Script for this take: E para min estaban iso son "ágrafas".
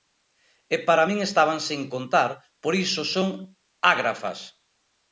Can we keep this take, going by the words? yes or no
no